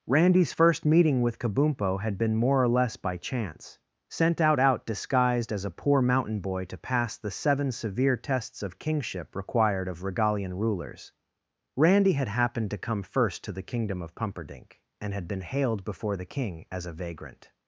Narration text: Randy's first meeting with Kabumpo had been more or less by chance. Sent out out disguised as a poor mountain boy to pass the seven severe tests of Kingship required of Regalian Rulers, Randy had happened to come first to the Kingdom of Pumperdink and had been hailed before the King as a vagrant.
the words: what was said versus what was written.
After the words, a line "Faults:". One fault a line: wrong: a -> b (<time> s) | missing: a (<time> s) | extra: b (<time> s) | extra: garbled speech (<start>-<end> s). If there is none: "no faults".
Randy's first meeting with Kabumpo had been more or less by chance. Sent out out disguised as a poor mountain boy to pass the seven severe tests of Kingship required of Regalian Rulers, Randy had happened to come first to the Kingdom of Pumperdink and had been hailed before the King as a vagrant.
Faults:
no faults